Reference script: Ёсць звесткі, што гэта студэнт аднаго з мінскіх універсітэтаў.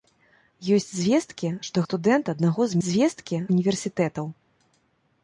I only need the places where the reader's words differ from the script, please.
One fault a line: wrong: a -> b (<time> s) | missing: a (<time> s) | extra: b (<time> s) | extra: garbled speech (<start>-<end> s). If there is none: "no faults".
missing: гэта (1.9 s)
wrong: мінскіх -> звесткі (2.9 s)